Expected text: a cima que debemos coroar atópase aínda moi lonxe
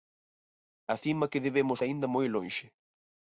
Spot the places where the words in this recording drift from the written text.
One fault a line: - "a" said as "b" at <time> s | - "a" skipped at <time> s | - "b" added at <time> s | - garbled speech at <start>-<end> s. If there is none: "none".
- "coroar atópase" skipped at 1.8 s